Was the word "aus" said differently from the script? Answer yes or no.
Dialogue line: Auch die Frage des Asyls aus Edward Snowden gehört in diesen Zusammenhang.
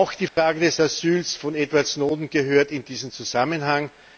yes